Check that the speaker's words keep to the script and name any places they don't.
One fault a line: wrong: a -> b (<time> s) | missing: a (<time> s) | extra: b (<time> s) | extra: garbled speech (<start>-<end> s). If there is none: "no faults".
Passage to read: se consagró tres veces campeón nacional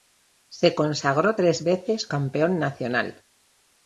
no faults